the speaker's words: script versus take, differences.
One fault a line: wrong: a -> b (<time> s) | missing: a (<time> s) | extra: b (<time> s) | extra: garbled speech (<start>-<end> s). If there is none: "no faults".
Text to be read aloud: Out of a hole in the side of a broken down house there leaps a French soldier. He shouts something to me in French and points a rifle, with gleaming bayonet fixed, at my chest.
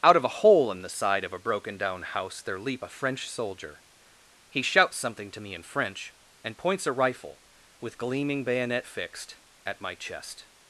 wrong: leaps -> leap (2.6 s)